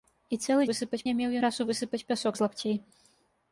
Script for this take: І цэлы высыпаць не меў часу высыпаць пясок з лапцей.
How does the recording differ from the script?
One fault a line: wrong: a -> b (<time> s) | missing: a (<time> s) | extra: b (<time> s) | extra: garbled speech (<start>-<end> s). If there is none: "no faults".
no faults